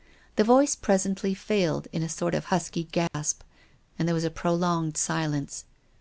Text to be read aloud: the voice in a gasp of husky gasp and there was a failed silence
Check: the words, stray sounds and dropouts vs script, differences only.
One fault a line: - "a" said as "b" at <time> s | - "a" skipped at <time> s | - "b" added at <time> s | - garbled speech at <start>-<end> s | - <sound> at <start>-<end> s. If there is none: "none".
- "presently failed" added at 0.8 s
- "gasp" said as "sort" at 2.1 s
- dropout at 3.1-3.1 s
- "failed" said as "prolonged" at 4.3 s